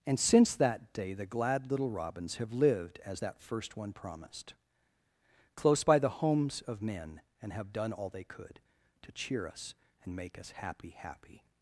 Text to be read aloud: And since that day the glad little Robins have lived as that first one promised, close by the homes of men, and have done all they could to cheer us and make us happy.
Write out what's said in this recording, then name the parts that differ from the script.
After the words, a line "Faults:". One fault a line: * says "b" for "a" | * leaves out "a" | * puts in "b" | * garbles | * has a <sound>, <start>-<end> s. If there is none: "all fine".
And since that day the glad little Robins have lived as that first one promised, close by the homes of men, and have done all they could to cheer us and make us happy happy.
Faults:
* puts in "happy"